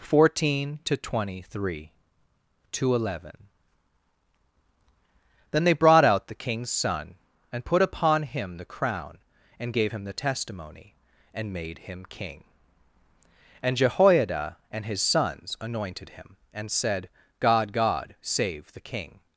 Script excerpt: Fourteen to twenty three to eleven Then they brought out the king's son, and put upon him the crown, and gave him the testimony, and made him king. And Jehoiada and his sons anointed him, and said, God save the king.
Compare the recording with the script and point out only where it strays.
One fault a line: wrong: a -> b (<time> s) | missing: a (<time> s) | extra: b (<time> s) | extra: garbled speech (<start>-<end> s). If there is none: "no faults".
extra: God (17.7 s)